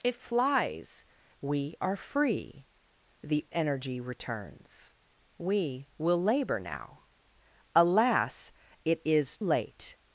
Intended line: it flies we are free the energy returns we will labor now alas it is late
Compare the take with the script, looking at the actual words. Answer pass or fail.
pass